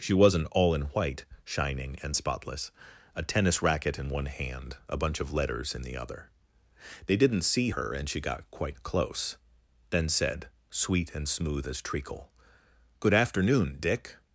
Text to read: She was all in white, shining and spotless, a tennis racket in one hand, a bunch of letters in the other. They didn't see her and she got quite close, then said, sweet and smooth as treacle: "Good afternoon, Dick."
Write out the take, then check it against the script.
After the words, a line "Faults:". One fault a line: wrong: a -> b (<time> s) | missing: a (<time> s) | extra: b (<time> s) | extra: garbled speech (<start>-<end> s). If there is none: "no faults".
She wasn't all in white, shining and spotless, a tennis racket in one hand, a bunch of letters in the other. They didn't see her and she got quite close, then said, sweet and smooth as treacle: "Good afternoon, Dick."
Faults:
wrong: was -> wasn't (0.1 s)